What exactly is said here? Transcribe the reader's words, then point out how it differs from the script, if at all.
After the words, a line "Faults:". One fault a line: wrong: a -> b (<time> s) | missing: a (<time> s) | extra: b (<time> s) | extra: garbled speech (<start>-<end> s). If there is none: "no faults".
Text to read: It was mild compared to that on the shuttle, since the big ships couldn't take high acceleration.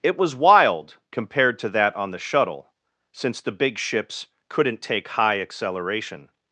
It was wild compared to that on the shuttle, since the big ships couldn't take high acceleration.
Faults:
wrong: mild -> wild (0.3 s)